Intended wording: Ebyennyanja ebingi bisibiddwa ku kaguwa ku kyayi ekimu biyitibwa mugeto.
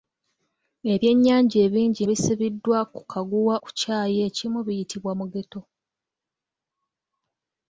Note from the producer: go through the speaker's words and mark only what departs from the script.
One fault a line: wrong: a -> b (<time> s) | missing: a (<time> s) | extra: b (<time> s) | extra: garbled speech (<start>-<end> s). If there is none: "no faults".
no faults